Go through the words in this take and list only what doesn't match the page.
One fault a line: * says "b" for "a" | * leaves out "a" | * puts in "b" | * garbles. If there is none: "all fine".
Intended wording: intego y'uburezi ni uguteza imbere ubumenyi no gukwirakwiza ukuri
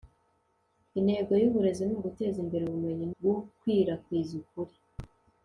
* leaves out "no"